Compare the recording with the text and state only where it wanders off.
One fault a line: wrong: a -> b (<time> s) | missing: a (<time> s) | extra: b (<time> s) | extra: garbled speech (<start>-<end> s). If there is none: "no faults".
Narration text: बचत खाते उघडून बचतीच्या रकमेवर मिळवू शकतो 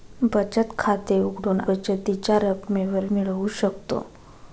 no faults